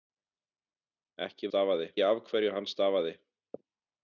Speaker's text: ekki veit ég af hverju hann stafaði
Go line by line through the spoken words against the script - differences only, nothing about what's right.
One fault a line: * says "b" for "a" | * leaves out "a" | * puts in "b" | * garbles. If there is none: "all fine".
* says "stafaði" for "veit"